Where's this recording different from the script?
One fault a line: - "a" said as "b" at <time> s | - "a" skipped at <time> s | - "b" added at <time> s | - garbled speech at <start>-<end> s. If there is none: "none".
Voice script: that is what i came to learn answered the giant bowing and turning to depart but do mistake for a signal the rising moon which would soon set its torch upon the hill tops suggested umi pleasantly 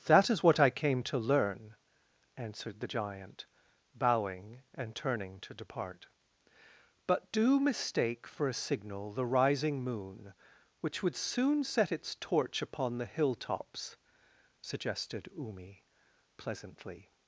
none